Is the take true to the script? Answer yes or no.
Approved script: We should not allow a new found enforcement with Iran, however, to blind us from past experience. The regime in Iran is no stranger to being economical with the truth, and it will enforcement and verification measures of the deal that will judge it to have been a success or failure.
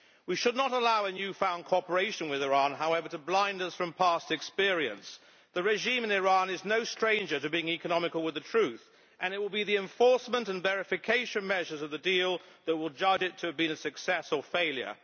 no